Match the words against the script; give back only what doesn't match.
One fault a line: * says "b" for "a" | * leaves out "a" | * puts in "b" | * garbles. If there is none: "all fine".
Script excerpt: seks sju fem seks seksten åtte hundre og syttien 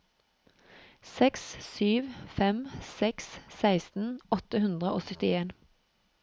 all fine